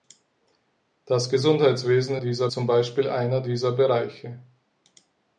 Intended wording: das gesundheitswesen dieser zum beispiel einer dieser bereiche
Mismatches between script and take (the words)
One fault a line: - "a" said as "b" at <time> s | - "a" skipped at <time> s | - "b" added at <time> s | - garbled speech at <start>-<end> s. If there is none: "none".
none